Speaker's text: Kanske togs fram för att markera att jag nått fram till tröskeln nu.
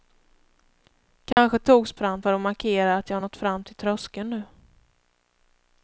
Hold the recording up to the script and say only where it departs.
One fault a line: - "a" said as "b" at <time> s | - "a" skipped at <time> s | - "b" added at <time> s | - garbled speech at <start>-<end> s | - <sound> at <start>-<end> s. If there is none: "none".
- dropout at 1.3-1.4 s